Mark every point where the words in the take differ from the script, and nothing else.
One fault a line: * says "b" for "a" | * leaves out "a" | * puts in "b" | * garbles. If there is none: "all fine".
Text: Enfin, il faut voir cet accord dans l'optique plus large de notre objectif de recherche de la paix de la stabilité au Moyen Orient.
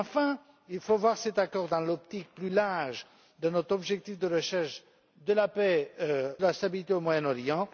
all fine